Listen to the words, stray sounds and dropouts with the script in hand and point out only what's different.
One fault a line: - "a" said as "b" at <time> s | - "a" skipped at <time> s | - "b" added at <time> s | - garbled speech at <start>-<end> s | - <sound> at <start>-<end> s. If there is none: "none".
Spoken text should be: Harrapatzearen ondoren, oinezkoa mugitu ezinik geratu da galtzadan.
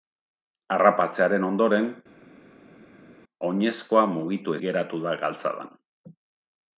- "ezinik" skipped at 4.6 s